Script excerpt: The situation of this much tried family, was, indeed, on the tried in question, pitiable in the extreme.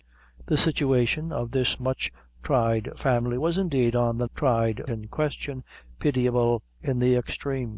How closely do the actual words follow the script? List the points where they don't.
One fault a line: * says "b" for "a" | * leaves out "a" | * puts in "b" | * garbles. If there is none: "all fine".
all fine